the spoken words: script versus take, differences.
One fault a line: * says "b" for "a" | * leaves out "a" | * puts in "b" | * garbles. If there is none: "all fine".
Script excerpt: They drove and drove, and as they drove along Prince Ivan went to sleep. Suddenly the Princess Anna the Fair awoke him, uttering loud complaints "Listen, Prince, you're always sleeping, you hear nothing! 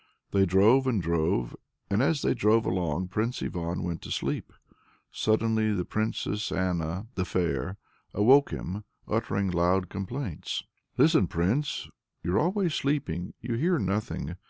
all fine